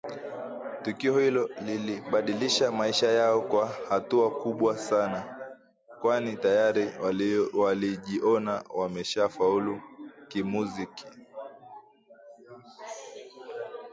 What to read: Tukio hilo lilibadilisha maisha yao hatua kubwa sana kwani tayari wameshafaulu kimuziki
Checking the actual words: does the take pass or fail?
fail